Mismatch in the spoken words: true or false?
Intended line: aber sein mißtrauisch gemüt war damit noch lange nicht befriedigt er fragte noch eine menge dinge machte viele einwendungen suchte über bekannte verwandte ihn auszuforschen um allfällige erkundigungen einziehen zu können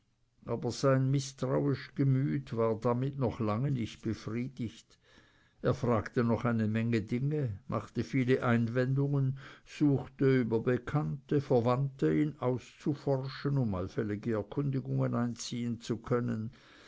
false